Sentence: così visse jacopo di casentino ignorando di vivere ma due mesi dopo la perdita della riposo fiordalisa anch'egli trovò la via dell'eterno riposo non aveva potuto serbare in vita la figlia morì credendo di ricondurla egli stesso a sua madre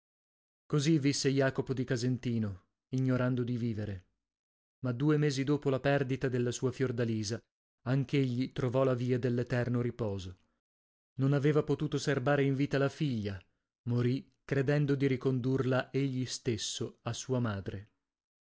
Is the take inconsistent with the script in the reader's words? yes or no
yes